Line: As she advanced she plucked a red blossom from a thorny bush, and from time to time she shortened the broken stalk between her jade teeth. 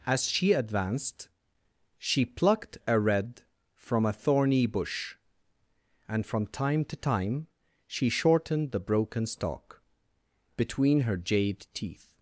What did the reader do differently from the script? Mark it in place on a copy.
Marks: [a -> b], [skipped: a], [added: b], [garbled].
As she advanced she plucked a red [skipped: blossom] from a thorny bush, and from time to time she shortened the broken stalk between her jade teeth.